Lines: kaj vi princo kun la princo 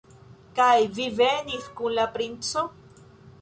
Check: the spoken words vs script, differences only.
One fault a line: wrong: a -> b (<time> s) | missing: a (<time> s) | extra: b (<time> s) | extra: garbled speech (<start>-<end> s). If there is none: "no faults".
wrong: princo -> venis (1.2 s)